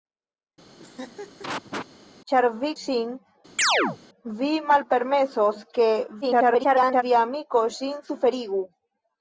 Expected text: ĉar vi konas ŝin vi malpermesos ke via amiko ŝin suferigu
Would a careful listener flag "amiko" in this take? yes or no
no